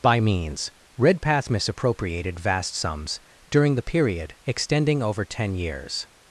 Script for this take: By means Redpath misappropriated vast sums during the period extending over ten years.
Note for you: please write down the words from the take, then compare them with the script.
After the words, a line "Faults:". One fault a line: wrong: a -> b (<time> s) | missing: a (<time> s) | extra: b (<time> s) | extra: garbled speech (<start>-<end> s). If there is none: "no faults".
By means Redpath misappropriated vast sums during the period extending over ten years.
Faults:
no faults